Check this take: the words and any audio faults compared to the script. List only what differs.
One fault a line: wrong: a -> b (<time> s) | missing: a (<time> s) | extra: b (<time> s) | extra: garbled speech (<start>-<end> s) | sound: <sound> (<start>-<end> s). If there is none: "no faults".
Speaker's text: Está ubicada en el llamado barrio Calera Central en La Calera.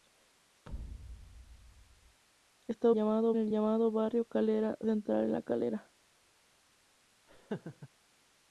sound: thud (0.7-2.2 s)
wrong: ubicada -> llamado (2.9 s)
sound: laugh (7.3-7.9 s)